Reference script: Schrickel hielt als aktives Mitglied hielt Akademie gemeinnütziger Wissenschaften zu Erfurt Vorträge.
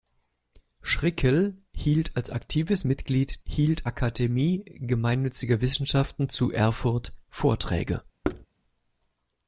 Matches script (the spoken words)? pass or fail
pass